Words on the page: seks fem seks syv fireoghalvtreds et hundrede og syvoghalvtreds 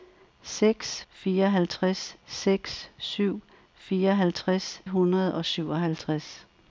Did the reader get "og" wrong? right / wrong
right